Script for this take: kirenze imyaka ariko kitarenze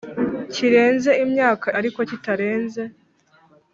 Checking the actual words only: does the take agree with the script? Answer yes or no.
yes